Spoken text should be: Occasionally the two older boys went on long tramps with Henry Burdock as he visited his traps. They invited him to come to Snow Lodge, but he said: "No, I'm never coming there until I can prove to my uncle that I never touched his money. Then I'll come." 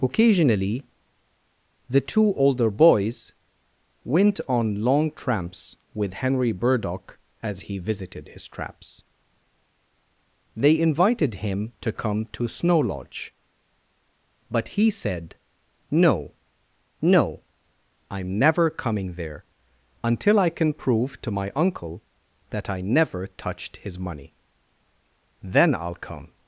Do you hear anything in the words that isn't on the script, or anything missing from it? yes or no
yes